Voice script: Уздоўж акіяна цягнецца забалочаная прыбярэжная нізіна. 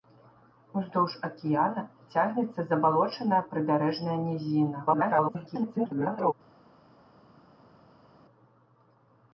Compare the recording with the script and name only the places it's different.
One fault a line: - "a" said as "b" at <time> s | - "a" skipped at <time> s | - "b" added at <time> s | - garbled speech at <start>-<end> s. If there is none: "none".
- garbled speech at 4.9-6.3 s